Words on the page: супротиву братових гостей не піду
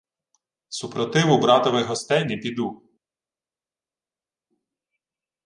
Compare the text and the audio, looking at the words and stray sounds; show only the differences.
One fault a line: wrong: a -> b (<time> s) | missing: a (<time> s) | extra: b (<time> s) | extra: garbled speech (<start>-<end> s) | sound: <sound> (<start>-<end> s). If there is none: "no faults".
no faults